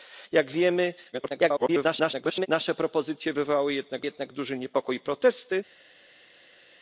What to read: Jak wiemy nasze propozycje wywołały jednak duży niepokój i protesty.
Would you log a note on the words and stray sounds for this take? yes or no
yes